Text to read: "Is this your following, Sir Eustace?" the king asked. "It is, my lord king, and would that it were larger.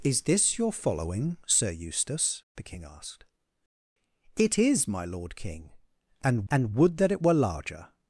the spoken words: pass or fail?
fail